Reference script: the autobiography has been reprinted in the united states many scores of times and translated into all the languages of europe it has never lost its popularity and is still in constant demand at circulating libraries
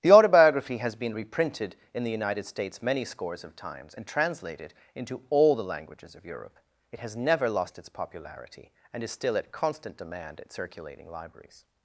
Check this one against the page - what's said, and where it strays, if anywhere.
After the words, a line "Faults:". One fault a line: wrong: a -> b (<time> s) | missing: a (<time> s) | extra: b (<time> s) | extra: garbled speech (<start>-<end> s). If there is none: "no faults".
the autobiography has been reprinted in the united states many scores of times and translated into all the languages of europe it has never lost its popularity and is still at constant demand at circulating libraries
Faults:
wrong: in -> at (9.4 s)